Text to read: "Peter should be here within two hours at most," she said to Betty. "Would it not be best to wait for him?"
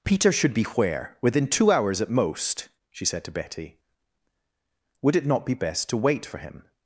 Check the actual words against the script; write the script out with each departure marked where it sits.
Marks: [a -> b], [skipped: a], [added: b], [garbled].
"Peter should be [here -> where] within two hours at most," she said to Betty. "Would it not be best to wait for him?"